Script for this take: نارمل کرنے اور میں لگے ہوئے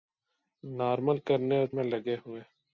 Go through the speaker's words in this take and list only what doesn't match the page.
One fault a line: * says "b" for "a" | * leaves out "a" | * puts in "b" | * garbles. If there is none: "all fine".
all fine